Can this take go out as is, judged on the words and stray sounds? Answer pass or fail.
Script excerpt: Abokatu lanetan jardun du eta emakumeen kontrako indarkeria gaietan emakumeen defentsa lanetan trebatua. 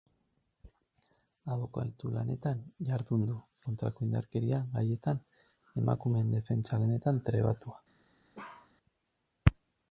fail